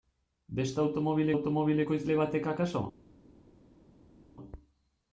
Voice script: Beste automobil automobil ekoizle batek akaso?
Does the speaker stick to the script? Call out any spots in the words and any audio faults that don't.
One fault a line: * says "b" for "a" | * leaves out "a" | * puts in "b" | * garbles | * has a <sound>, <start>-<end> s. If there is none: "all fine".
all fine